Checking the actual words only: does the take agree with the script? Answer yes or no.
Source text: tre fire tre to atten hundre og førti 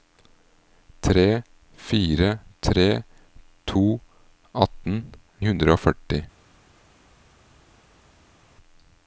yes